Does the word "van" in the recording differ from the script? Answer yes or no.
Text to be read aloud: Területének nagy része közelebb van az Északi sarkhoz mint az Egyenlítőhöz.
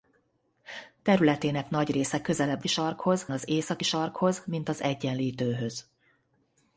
yes